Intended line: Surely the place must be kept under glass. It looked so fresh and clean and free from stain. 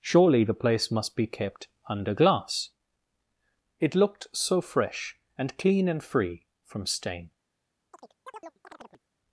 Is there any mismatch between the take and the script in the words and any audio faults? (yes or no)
yes